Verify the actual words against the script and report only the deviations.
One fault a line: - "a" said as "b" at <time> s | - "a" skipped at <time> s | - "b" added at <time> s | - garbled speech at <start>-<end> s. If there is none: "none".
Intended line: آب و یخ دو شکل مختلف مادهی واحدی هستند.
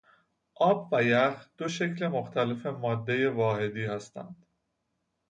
none